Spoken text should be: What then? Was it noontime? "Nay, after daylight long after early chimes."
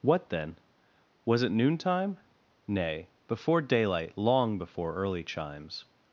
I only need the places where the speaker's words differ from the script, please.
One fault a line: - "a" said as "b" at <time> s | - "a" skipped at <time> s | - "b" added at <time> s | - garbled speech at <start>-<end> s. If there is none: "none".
- "after" said as "before" at 3.3 s
- "after" said as "before" at 4.6 s